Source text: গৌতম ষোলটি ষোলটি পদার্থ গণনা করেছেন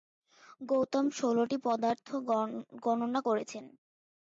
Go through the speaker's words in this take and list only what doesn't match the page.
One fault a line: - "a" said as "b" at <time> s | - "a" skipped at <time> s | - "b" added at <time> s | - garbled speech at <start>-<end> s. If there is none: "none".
- "ষোলটি" skipped at 1.6 s